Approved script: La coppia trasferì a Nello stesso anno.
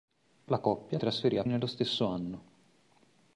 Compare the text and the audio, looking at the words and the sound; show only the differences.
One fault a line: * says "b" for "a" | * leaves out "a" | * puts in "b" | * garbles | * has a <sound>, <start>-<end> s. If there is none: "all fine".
all fine